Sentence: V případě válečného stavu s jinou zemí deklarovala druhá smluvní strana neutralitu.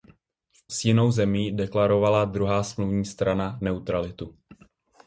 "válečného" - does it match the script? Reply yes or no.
no